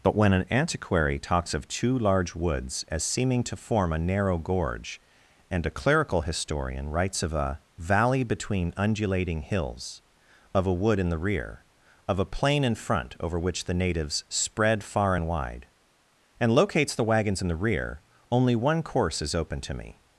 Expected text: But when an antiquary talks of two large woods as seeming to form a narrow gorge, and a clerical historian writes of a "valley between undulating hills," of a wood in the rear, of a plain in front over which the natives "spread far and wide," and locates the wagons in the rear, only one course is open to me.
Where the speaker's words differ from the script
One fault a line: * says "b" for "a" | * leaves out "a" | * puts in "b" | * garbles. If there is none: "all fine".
all fine